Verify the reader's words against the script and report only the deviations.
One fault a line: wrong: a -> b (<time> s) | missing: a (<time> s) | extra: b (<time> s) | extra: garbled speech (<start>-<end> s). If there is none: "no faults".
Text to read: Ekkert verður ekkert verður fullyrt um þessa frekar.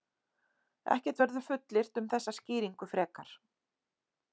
missing: ekkert verður (1.5 s)
extra: skýringu (2.4 s)